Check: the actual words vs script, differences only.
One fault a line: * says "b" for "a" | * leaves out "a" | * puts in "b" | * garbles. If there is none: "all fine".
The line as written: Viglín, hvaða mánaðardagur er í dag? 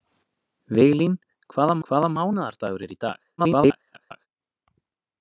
* puts in "hvaða"
* garbles